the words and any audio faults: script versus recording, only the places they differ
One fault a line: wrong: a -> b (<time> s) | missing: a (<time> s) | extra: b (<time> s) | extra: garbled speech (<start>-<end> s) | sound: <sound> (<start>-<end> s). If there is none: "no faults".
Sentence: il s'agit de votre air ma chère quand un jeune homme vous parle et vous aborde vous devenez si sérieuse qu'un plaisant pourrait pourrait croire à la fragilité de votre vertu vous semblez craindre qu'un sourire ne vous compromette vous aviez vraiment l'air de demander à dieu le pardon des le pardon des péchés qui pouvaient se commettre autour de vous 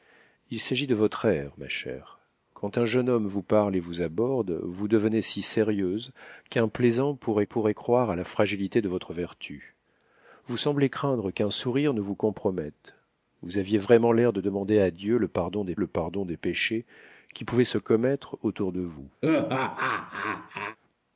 sound: laugh (19.2-20.8 s)